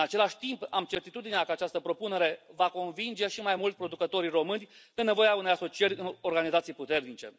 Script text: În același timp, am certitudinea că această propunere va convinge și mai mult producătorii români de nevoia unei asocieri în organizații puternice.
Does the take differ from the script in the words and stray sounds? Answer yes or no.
no